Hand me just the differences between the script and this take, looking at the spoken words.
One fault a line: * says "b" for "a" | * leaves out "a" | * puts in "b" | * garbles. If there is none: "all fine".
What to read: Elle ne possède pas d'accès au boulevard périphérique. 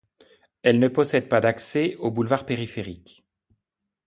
all fine